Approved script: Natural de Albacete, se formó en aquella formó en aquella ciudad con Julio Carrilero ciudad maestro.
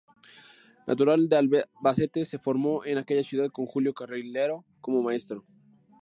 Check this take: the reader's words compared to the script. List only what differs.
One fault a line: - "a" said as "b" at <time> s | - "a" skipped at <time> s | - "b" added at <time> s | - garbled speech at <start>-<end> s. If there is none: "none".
- "formó en aquella" skipped at 3.2 s
- "ciudad" said as "como" at 4.8 s